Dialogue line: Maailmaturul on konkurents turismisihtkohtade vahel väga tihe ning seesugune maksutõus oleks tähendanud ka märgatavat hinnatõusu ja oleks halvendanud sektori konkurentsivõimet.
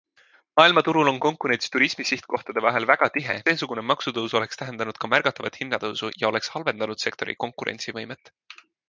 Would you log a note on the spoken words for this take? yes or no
yes